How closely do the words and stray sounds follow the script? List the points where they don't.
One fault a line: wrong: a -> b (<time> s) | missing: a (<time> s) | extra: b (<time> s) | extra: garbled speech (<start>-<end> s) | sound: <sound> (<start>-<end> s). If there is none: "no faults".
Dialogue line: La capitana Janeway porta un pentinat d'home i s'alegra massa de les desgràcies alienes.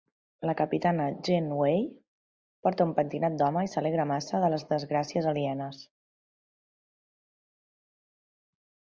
no faults